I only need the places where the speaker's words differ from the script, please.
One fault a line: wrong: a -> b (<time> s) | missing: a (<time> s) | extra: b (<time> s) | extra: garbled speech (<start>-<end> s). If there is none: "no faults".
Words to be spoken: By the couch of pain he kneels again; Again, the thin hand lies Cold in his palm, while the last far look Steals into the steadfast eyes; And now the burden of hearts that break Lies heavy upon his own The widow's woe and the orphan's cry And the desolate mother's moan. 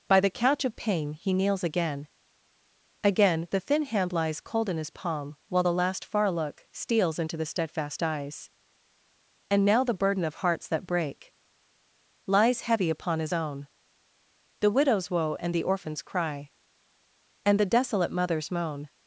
no faults